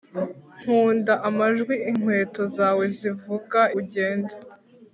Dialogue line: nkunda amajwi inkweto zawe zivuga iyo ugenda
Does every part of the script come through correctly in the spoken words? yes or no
no